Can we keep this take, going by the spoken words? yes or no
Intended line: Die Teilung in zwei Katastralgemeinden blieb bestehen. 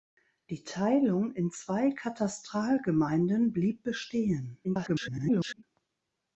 no